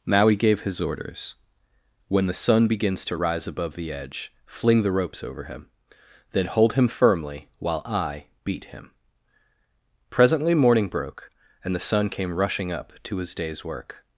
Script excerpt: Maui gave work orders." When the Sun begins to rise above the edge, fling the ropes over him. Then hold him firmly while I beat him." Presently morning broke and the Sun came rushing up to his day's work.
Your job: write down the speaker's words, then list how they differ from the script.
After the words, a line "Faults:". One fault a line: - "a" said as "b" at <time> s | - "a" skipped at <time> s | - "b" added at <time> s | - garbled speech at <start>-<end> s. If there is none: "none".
Maui gave his orders." When the Sun begins to rise above the edge, fling the ropes over him. Then hold him firmly while I beat him." Presently morning broke and the Sun came rushing up to his day's work.
Faults:
- "work" said as "his" at 0.6 s